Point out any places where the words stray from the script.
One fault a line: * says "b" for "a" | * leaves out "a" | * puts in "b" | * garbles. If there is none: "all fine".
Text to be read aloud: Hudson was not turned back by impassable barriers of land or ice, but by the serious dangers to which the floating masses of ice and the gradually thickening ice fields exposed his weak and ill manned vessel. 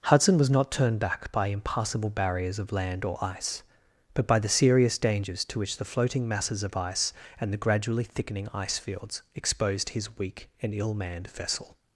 all fine